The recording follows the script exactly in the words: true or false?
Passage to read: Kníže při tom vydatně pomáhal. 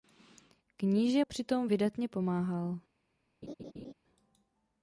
true